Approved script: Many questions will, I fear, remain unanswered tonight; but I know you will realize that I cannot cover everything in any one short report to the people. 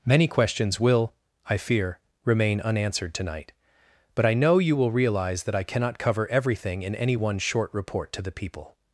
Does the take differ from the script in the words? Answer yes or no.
no